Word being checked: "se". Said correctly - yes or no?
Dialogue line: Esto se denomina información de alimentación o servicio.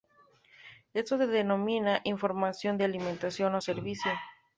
yes